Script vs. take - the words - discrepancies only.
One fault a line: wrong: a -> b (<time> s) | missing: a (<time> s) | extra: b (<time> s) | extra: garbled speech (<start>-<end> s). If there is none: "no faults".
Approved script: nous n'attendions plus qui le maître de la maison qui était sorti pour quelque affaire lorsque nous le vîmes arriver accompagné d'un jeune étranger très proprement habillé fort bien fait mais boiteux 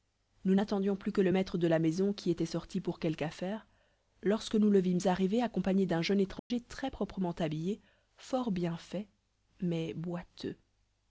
wrong: qui -> que (1.1 s)